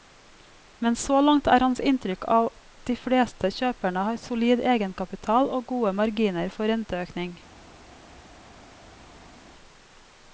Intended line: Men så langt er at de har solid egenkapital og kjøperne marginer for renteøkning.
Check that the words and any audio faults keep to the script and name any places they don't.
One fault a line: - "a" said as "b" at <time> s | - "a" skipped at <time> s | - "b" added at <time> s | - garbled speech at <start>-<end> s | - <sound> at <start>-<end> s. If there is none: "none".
- "hans inntrykk" added at 1.6 s
- "fleste kjøperne" added at 3.0 s
- "kjøperne" said as "gode" at 5.7 s